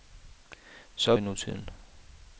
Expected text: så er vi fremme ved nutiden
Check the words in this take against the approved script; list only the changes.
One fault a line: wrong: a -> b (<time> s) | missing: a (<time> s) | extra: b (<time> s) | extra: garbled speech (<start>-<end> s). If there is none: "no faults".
missing: vi fremme (1.1 s)